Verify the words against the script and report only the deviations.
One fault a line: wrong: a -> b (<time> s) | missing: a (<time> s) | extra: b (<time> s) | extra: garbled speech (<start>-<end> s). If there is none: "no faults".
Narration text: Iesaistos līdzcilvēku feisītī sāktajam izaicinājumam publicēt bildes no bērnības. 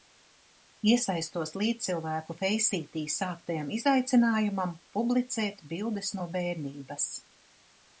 no faults